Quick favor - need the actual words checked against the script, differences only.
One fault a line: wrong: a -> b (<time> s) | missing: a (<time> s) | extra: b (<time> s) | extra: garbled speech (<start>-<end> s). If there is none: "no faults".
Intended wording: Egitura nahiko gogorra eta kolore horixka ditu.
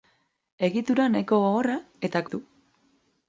missing: kolore horixka (2.2 s)